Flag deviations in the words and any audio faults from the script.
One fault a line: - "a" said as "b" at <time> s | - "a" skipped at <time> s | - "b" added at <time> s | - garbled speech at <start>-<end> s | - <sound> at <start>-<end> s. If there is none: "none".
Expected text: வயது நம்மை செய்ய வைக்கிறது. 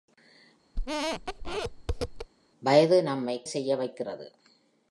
- squeak at 0.8-2.3 s